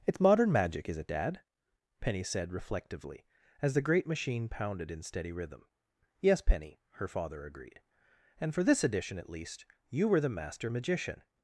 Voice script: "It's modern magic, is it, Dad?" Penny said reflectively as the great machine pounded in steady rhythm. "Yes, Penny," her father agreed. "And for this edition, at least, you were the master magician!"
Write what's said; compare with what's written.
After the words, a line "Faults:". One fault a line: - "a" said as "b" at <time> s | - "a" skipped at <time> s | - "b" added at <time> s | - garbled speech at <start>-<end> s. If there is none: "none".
"It's modern magic, is it, Dad?" Penny said reflectively as the great machine pounded in steady rhythm. "Yes, Penny," her father agreed. "And for this edition, at least, you were the master magician!"
Faults:
none